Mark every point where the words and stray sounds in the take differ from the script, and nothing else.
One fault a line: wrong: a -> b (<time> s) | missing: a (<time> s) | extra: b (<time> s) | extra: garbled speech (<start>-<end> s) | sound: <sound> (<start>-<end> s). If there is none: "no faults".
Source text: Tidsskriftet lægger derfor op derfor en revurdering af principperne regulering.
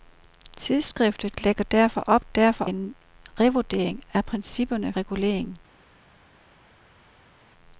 no faults